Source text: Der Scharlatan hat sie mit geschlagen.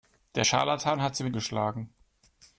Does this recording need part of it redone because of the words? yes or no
no